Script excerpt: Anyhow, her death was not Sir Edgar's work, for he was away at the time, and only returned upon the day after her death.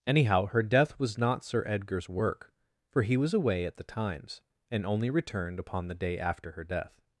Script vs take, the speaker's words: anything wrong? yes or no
yes